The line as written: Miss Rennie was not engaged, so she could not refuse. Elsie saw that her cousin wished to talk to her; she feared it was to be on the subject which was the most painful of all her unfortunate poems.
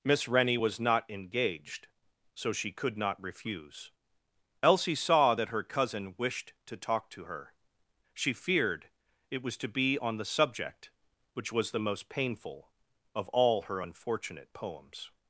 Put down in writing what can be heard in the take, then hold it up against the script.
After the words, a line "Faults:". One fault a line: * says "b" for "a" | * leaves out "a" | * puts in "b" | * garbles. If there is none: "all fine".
Miss Rennie was not engaged, so she could not refuse. Elsie saw that her cousin wished to talk to her; she feared it was to be on the subject which was the most painful of all her unfortunate poems.
Faults:
all fine